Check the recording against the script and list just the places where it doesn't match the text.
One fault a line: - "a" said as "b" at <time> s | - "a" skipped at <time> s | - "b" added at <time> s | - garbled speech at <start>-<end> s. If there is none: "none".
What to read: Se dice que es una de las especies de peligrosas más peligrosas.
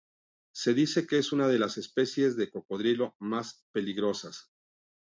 - "peligrosas" said as "cocodrilo" at 2.5 s